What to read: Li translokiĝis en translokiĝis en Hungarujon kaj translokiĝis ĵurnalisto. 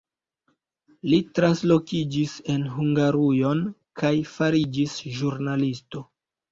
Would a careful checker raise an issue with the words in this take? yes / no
yes